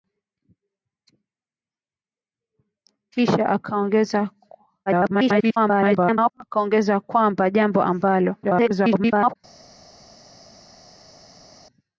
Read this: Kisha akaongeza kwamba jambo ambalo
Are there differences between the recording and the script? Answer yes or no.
yes